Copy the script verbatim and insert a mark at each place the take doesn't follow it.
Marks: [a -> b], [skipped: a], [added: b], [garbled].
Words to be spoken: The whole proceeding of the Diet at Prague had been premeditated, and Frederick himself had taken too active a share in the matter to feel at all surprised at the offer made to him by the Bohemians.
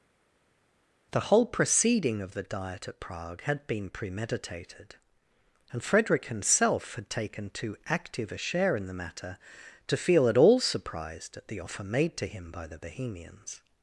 The whole proceeding of the Diet at Prague had been premeditated, and Frederick himself had taken too active a share in the matter to feel at all surprised at the offer made to him by the Bohemians.